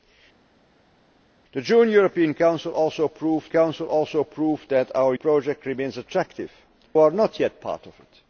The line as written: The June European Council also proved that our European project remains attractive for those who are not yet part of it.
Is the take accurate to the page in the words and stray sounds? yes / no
no